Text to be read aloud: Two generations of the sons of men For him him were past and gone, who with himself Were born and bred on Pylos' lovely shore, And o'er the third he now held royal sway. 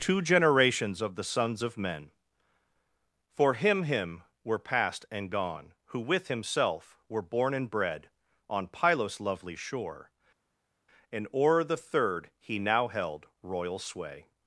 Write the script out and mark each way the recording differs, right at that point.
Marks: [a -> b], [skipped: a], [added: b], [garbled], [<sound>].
Two generations of the sons of men For him him were past and gone, who with himself Were born and bred on Pylos' lovely shore, And o'er the third he now held royal sway.